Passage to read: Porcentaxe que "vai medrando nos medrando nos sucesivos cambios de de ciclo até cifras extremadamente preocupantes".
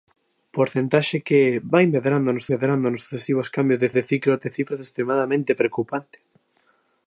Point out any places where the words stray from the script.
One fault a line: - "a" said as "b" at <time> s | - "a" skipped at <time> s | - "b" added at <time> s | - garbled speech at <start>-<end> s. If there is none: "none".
none